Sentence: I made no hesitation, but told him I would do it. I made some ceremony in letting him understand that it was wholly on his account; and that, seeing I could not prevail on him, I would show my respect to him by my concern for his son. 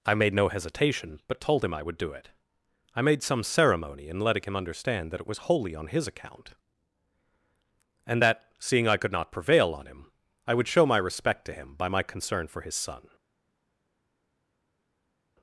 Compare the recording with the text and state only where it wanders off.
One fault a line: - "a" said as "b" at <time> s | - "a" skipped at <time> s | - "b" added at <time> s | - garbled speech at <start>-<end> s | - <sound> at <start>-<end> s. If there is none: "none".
none